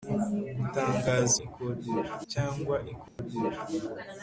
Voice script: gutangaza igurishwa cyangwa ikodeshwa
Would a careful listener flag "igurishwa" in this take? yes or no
yes